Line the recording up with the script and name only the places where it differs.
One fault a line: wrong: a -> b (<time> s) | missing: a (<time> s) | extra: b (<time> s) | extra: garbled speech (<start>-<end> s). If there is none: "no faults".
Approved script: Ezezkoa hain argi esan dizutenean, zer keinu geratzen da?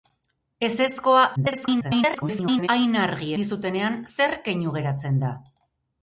extra: garbled speech (1.4-2.7 s)
missing: esan (3.3 s)